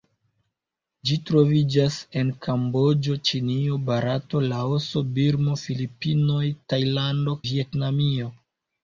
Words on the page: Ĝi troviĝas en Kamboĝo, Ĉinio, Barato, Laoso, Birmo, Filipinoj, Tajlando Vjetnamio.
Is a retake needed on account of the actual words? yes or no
no